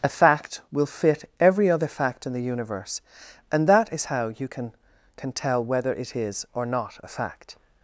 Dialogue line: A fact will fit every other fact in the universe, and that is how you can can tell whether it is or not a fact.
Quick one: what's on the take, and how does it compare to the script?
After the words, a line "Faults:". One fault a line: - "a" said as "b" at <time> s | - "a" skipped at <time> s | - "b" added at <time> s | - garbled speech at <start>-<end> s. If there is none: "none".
A fact will fit every other fact in the universe, and that is how you can can tell whether it is or not a fact.
Faults:
none